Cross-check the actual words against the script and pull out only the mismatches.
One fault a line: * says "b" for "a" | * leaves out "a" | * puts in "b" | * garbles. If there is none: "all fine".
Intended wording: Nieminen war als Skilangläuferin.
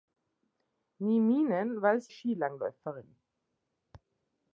all fine